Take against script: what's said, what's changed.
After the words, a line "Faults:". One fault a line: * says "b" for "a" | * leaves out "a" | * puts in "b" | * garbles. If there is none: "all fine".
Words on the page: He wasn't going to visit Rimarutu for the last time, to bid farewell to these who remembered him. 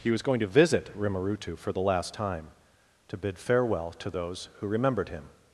He was going to visit Rimarutu for the last time, to bid farewell to those who remembered him.
Faults:
* says "was" for "wasn't"
* says "those" for "these"